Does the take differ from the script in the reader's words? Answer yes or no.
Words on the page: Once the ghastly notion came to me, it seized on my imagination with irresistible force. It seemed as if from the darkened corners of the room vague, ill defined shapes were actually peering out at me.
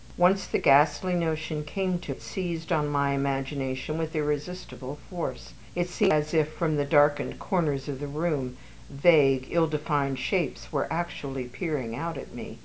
yes